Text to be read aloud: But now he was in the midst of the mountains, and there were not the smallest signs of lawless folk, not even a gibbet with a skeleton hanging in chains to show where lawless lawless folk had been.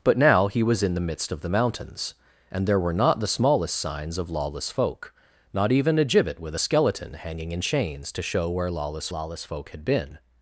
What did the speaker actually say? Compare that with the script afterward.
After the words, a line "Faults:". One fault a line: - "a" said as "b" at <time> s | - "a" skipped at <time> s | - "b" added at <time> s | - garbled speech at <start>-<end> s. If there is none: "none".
But now he was in the midst of the mountains, and there were not the smallest signs of lawless folk, not even a gibbet with a skeleton hanging in chains to show where lawless lawless folk had been.
Faults:
none